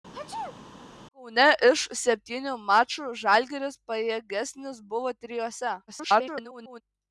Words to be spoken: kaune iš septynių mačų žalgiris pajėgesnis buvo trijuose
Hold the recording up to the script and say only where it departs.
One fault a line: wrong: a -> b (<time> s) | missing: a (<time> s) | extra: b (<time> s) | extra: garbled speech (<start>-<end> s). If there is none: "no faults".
extra: garbled speech (5.9-6.8 s)